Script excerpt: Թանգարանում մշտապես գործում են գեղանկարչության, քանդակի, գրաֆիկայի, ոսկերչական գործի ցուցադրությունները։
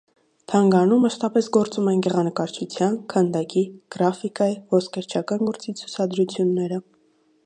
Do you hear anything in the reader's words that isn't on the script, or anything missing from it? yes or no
no